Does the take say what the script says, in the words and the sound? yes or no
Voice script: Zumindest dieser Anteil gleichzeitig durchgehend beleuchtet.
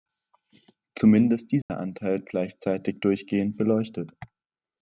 no